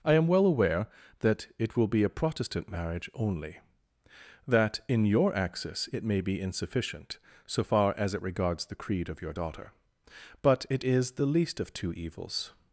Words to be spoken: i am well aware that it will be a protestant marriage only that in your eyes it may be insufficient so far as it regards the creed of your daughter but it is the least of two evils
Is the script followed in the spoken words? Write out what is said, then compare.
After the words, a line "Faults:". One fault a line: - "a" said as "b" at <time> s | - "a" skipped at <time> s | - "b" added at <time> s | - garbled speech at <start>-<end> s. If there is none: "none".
i am well aware that it will be a protestant marriage only that in your axis it may be insufficient so far as it regards the creed of your daughter but it is the least of two evils
Faults:
- "eyes" said as "axis" at 5.3 s